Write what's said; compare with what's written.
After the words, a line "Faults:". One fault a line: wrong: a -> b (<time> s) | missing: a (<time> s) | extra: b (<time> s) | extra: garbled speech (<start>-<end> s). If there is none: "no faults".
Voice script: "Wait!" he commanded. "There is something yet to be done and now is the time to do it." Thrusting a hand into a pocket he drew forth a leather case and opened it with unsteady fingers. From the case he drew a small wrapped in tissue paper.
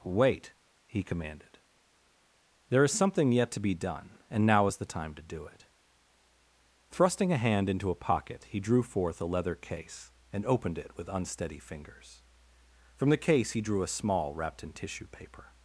"Wait!" he commanded. "There is something yet to be done and now is the time to do it." Thrusting a hand into a pocket he drew forth a leather case and opened it with unsteady fingers. From the case he drew a small wrapped in tissue paper.
Faults:
no faults